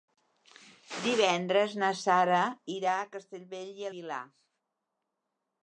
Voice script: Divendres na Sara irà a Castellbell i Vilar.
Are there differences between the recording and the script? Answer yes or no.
no